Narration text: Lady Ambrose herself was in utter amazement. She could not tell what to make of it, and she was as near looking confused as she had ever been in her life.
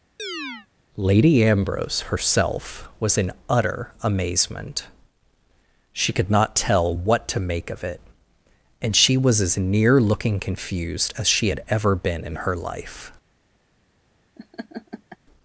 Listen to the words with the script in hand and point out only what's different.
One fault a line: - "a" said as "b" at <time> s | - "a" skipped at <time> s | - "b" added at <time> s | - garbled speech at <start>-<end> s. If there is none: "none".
none